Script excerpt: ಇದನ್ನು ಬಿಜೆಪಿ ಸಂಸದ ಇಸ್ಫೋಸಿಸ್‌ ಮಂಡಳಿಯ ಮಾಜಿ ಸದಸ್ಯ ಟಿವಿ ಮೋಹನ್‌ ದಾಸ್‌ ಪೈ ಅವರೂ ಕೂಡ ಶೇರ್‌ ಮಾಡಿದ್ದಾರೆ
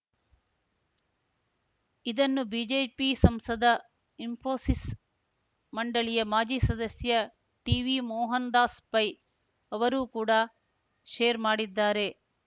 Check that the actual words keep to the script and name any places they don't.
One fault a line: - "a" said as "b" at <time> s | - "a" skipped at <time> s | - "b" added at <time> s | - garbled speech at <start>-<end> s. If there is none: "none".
none